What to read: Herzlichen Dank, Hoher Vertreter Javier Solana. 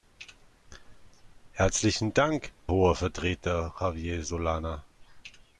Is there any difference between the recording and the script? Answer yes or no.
no